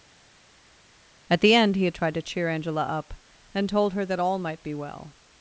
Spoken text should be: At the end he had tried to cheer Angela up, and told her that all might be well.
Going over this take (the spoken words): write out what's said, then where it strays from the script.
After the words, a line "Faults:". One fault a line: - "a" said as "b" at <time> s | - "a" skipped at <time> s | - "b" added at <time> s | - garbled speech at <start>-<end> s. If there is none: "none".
At the end he had tried to cheer Angela up, and told her that all might be well.
Faults:
none